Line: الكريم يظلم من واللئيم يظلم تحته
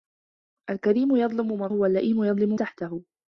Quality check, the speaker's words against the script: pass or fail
pass